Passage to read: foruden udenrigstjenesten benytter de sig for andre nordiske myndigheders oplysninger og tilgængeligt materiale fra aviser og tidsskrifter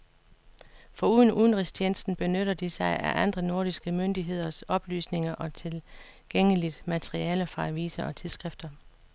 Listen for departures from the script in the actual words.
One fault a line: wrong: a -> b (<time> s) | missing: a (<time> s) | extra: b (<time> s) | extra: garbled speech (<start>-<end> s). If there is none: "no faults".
wrong: for -> af (3.0 s)